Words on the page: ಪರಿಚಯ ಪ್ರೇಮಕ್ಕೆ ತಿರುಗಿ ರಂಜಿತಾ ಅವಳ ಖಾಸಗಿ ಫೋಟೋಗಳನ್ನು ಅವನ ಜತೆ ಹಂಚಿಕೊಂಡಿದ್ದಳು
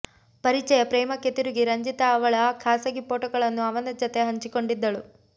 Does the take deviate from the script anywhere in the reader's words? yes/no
no